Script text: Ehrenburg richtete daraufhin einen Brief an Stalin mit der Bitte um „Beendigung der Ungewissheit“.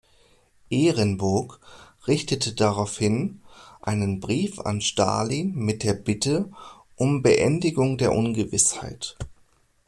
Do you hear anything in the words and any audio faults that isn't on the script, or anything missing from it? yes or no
yes